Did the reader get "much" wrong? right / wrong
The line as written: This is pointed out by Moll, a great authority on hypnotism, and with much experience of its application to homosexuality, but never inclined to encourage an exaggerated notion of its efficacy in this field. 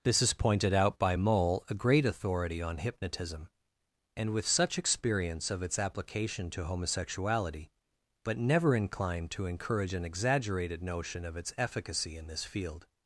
wrong